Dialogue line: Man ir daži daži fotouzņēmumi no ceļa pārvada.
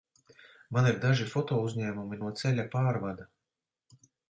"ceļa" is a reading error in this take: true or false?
false